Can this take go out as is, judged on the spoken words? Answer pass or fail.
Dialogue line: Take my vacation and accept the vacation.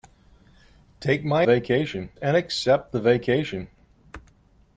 pass